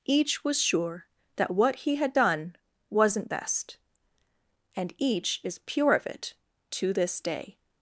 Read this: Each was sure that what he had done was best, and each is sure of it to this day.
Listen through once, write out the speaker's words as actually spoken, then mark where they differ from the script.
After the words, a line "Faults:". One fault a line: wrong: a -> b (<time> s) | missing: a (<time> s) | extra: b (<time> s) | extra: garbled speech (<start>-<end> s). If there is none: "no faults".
Each was sure that what he had done wasn't best, and each is pure of it to this day.
Faults:
wrong: was -> wasn't (2.9 s)
wrong: sure -> pure (5.6 s)